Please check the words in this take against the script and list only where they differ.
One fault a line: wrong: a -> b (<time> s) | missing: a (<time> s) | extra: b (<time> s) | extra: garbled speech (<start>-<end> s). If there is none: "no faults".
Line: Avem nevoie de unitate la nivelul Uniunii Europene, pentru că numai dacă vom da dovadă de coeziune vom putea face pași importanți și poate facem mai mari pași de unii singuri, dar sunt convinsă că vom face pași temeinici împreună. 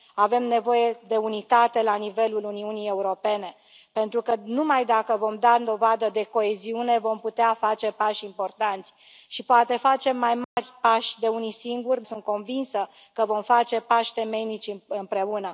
missing: dar (12.0 s)